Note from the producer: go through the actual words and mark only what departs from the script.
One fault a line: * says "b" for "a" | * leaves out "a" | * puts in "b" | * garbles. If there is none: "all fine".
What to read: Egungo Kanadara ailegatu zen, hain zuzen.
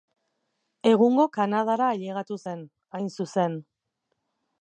all fine